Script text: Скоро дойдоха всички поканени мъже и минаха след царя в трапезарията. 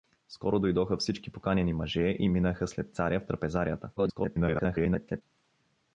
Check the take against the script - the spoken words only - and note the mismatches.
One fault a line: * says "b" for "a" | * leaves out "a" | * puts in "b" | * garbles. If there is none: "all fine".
* garbles